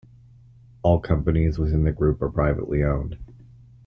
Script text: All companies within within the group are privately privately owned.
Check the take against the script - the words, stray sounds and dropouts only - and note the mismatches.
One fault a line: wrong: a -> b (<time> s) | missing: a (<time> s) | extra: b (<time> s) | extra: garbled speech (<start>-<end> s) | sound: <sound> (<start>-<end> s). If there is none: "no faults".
missing: within (1.8 s)
missing: privately (2.8 s)